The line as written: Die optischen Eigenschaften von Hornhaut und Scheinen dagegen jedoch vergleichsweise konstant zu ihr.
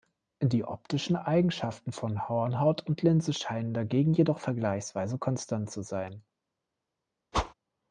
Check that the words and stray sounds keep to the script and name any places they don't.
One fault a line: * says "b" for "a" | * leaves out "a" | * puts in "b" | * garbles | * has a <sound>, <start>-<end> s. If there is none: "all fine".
* puts in "Linse"
* says "sein" for "ihr"
* has a whoosh, 7.3-7.5 s